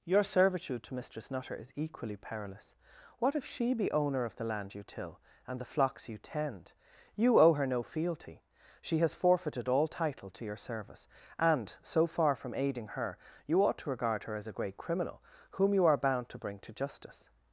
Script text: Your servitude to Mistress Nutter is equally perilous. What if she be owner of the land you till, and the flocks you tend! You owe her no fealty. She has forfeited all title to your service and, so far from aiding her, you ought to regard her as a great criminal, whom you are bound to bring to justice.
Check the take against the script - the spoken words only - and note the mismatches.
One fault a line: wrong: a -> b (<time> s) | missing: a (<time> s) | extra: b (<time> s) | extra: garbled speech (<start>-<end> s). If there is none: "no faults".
no faults